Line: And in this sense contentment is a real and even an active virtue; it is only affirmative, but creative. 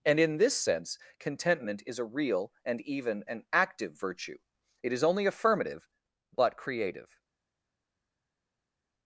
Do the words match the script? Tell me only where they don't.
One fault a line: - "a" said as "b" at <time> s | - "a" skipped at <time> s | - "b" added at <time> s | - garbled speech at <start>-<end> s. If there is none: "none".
none